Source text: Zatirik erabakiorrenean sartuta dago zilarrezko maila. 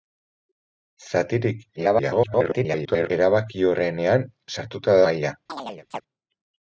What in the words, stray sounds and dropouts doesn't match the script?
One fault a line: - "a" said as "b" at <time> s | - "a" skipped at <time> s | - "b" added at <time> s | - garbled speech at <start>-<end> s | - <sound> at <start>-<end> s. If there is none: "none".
- garbled speech at 1.8-3.1 s
- "dago zilarrezko" skipped at 5.0 s
- chirp at 5.5-6.0 s